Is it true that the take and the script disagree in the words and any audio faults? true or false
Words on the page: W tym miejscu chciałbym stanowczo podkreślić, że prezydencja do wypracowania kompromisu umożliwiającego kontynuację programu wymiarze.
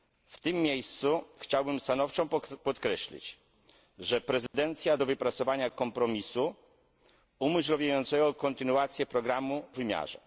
true